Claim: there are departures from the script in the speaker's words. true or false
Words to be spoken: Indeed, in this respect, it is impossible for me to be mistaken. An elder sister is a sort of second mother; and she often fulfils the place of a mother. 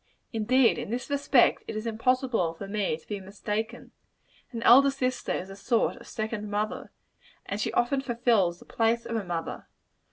false